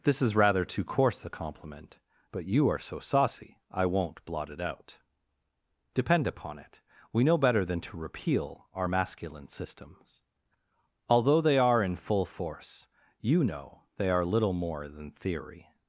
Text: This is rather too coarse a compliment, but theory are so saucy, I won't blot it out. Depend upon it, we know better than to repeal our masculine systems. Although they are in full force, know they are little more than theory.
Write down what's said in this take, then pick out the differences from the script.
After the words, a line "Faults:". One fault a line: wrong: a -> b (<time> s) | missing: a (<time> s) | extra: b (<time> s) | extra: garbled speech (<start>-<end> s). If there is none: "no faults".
This is rather too coarse a compliment, but you are so saucy, I won't blot it out. Depend upon it, we know better than to repeal our masculine systems. Although they are in full force, you know they are little more than theory.
Faults:
wrong: theory -> you (2.4 s)
extra: you (13.2 s)